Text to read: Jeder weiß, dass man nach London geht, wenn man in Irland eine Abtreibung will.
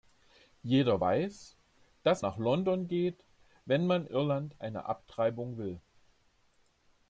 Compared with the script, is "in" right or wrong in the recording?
wrong